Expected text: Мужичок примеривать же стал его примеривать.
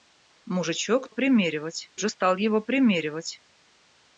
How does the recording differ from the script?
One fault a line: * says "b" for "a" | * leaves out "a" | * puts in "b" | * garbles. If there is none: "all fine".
all fine